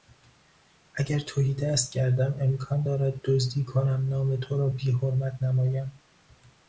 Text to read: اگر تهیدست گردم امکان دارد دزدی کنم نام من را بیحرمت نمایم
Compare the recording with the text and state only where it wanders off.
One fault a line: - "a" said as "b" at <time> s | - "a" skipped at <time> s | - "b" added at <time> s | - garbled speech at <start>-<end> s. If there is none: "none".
- "من" said as "تو" at 4.3 s